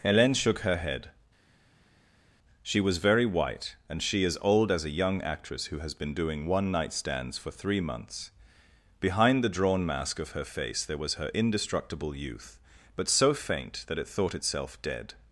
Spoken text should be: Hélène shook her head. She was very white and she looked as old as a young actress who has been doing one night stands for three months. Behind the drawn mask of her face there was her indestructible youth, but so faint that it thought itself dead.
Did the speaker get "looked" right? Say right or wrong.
wrong